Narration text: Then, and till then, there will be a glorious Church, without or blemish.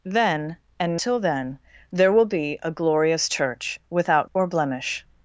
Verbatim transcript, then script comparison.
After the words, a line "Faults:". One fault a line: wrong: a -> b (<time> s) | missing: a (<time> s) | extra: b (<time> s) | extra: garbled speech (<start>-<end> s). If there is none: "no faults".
Then, and till then, there will be a glorious Church, without or blemish.
Faults:
no faults